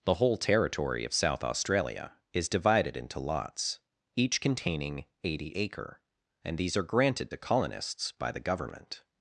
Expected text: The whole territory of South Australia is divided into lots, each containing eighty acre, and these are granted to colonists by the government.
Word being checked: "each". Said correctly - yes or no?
yes